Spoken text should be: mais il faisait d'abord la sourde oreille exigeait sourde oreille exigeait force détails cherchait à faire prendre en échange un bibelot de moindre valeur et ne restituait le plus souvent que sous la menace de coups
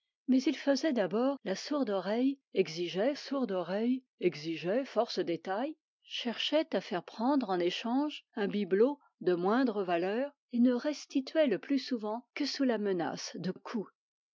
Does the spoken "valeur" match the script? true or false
true